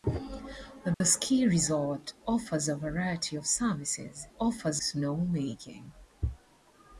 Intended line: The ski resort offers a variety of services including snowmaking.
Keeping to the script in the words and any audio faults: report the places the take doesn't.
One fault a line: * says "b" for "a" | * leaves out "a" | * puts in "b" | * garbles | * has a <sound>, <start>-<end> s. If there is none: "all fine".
* has a dropout, 0.9-1.0 s
* says "offers" for "including"